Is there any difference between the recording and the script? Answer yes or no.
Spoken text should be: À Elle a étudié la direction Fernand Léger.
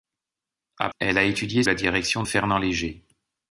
no